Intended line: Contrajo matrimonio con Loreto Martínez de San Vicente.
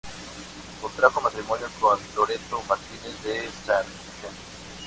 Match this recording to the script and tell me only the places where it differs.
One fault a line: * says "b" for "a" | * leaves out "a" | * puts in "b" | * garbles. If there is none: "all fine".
all fine